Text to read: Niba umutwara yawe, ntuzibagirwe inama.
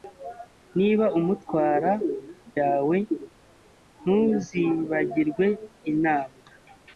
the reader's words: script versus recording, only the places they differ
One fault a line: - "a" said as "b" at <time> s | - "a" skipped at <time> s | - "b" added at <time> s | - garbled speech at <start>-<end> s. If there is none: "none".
none